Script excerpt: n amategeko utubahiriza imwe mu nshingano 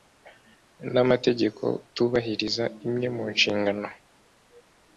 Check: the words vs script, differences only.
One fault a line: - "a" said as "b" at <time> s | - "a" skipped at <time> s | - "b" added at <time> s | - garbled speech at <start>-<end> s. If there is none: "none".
none